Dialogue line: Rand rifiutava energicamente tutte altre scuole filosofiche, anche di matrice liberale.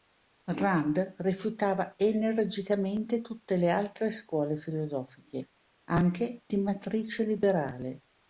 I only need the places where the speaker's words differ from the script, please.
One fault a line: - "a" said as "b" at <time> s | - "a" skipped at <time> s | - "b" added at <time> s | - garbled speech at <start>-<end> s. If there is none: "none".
- "le" added at 3.6 s